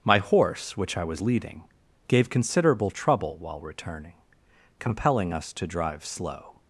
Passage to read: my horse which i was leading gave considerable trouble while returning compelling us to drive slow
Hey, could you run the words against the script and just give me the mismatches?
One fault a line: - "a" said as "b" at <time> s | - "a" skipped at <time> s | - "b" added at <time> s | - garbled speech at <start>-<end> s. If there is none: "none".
none